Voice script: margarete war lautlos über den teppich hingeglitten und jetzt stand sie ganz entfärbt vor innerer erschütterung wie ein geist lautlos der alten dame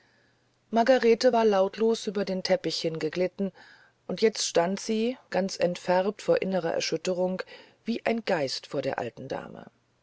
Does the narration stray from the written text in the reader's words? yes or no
yes